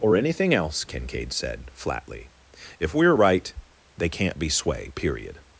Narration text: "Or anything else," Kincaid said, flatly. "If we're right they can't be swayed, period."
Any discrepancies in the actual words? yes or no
yes